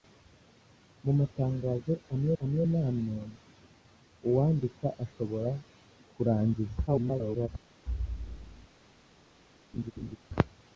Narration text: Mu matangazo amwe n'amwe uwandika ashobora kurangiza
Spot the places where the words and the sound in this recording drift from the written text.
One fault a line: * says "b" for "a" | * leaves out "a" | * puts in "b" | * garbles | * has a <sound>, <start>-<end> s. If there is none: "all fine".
* puts in "amwe"
* garbles
* has a thud, 7.9-8.7 s
* has a laugh, 9.7-10.2 s